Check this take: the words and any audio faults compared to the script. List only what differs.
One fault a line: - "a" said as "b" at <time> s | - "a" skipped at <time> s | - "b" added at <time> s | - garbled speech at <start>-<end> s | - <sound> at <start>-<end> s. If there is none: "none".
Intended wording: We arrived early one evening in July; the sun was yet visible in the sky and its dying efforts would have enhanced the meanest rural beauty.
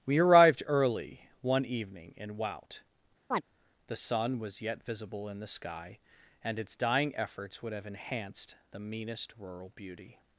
- "July" said as "Wout" at 2.4 s
- chirp at 3.3-3.4 s